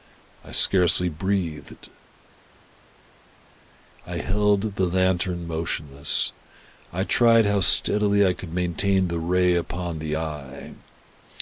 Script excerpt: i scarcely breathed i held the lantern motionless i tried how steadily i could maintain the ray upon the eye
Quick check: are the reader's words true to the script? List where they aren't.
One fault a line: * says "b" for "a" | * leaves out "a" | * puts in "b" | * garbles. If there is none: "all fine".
all fine